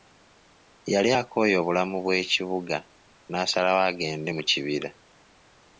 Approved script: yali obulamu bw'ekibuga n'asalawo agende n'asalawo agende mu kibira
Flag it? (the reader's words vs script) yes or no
yes